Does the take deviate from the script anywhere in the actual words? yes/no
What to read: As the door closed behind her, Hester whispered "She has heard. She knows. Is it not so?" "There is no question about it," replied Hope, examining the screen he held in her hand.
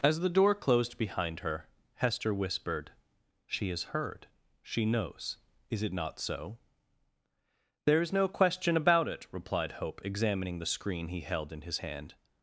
yes